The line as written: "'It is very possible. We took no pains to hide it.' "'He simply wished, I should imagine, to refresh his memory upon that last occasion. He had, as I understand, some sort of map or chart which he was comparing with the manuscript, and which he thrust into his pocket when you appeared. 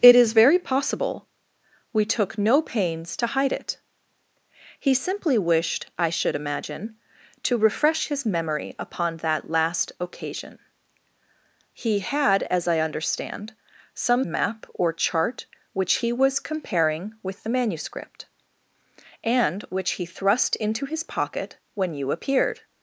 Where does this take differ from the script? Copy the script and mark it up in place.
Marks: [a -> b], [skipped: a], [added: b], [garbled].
"'It is very possible. We took no pains to hide it.' "'He simply wished, I should imagine, to refresh his memory upon that last occasion. He had, as I understand, some [skipped: sort of] map or chart which he was comparing with the manuscript, and which he thrust into his pocket when you appeared.